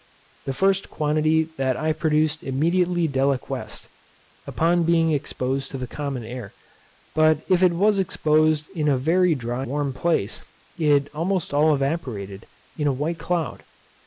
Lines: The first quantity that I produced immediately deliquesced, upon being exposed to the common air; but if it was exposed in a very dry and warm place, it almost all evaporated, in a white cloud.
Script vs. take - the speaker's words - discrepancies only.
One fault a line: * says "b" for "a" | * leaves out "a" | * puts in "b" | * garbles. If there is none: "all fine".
* leaves out "and"